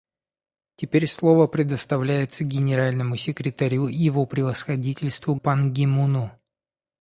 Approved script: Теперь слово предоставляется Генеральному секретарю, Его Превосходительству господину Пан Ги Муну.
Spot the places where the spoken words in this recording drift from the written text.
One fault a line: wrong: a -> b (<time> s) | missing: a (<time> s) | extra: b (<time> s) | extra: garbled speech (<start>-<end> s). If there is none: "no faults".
missing: господину (5.4 s)